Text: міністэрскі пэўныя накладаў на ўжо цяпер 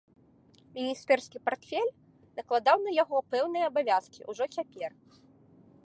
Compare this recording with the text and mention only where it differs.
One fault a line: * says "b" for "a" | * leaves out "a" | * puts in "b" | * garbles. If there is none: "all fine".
* says "партфель" for "пэўныя"
* puts in "яго пэўныя абавязкі"